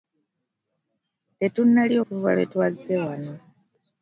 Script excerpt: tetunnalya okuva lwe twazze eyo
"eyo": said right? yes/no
no